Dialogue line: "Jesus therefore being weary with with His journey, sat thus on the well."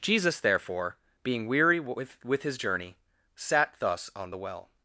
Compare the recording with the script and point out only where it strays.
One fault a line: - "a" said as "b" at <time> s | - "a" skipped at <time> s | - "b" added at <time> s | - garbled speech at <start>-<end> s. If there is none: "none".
none